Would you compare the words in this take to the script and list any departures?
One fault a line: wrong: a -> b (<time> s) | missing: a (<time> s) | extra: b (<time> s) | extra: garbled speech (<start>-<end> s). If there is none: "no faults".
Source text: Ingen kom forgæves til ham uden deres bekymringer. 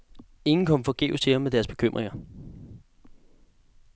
wrong: uden -> med (1.4 s)